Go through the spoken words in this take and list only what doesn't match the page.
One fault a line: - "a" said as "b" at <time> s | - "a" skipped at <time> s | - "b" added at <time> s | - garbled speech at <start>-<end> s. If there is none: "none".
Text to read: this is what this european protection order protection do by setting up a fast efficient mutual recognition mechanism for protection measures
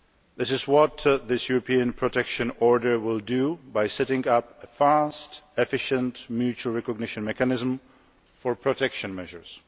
- "protection" said as "will" at 3.0 s